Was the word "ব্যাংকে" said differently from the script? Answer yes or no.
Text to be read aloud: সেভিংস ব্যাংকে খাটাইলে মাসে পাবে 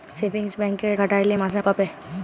no